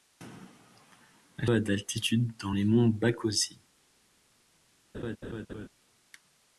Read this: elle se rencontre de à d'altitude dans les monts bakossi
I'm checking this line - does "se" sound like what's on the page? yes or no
no